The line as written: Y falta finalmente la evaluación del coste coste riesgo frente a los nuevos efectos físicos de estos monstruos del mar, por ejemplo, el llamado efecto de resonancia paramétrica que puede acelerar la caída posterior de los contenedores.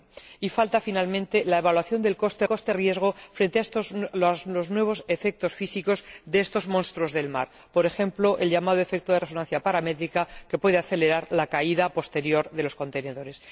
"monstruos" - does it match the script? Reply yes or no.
yes